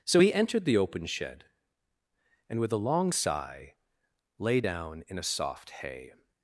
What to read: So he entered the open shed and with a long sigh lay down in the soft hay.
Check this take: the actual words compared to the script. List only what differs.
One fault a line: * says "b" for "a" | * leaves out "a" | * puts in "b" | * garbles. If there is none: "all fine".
* says "a" for "the"